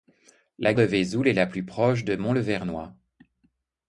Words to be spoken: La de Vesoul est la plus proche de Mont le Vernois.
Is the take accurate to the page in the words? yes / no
yes